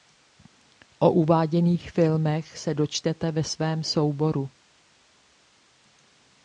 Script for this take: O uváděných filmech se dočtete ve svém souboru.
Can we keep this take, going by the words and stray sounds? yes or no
yes